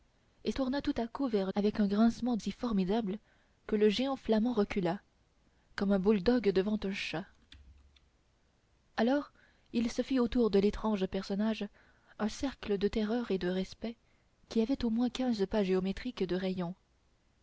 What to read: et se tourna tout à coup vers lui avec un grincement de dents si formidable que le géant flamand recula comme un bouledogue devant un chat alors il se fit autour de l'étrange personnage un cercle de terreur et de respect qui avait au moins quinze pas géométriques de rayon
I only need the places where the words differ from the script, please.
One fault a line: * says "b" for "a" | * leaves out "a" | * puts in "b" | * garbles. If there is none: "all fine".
* leaves out "se"
* leaves out "lui"
* leaves out "de dents"